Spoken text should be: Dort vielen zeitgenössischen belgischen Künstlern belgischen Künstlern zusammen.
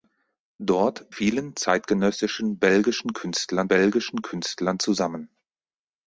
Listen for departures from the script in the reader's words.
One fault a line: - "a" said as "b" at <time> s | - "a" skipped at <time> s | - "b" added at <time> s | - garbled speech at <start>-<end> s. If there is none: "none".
none